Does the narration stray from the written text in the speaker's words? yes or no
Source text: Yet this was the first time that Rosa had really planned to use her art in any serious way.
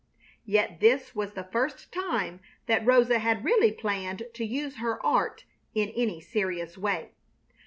no